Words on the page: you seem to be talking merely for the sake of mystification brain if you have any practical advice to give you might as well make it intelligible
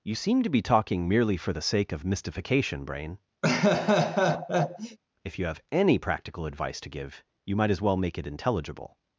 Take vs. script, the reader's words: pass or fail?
pass